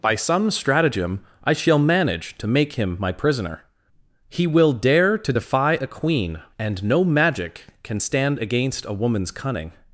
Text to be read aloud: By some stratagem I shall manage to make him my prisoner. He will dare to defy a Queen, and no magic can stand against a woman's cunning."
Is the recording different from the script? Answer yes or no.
no